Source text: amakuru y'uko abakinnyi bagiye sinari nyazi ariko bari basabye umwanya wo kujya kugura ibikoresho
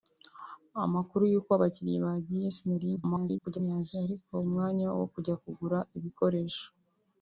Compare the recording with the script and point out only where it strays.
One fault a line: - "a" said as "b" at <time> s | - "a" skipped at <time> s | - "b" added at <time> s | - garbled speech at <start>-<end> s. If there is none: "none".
- garbled speech at 3.0-3.6 s
- "bari basabye" skipped at 4.3 s